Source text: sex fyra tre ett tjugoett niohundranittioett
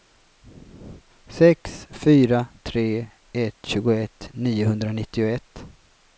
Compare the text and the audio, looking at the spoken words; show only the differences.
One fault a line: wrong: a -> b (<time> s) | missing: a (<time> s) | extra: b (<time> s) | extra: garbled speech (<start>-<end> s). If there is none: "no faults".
no faults